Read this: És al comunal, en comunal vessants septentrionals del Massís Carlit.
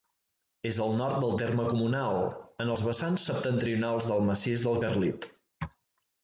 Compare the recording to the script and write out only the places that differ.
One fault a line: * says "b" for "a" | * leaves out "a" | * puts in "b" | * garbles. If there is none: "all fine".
* puts in "nord del terme"
* says "els" for "comunal"
* puts in "del"